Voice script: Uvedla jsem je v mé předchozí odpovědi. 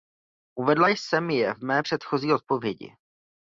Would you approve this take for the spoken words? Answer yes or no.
yes